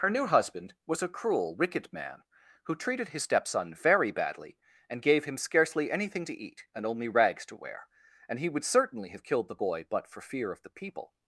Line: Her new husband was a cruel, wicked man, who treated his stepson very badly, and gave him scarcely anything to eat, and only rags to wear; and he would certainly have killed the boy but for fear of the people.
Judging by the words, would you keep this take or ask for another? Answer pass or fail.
pass